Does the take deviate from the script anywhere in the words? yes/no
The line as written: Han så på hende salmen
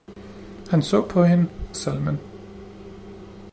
no